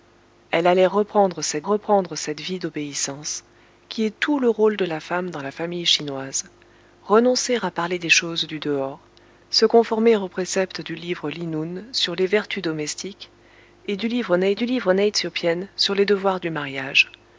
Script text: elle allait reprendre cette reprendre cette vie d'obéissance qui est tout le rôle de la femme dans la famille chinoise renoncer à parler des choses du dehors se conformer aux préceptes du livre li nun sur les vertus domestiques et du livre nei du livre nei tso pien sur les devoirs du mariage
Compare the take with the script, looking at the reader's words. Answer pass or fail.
pass